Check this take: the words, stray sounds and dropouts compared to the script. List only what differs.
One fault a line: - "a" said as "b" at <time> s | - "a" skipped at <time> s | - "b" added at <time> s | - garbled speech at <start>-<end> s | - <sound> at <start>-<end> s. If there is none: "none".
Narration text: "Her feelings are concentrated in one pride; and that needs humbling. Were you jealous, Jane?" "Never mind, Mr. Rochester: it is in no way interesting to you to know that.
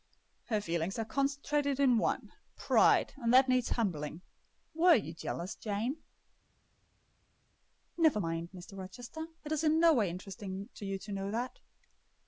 none